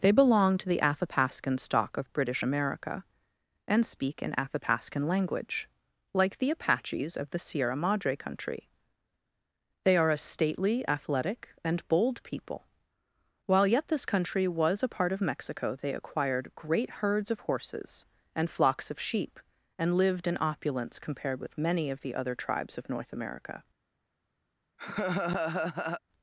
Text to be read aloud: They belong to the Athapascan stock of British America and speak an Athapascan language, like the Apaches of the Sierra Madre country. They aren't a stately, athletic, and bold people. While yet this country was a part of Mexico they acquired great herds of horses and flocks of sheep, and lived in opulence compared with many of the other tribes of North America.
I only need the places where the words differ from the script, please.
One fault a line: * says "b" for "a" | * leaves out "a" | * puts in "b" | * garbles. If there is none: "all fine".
* says "are" for "aren't"